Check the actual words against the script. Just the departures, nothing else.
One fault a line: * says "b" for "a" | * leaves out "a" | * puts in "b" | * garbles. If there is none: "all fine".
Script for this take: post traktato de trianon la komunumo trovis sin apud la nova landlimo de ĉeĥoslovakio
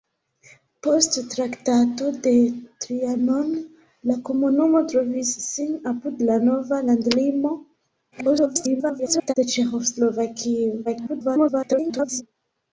* garbles
* garbles